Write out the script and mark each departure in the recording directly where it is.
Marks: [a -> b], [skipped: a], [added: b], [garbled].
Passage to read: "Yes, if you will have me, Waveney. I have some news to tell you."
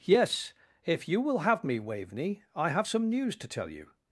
"Yes, if you will have me, Waveney. I have some news to tell you."